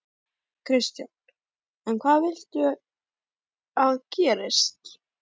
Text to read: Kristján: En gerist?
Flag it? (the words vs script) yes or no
yes